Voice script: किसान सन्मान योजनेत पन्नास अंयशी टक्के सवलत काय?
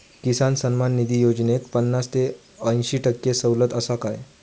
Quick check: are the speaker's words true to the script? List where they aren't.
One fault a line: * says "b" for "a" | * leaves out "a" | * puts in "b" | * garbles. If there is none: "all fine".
* puts in "निधी"
* puts in "ते"
* puts in "आसा"